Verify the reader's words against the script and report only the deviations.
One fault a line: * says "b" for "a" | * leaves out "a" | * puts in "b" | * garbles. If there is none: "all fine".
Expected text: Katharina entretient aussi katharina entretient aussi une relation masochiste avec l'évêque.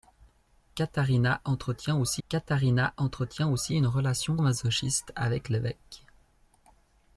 all fine